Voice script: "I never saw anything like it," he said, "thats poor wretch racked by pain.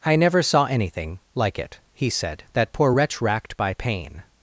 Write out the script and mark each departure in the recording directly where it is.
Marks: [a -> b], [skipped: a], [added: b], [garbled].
"I never saw anything like it," he said, ["thats -> that] poor wretch racked by pain.